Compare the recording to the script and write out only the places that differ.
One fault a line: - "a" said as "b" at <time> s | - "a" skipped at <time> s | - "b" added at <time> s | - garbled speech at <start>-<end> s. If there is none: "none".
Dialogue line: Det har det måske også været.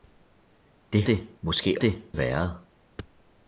- "har" skipped at 1.0 s
- "også" said as "det" at 1.8 s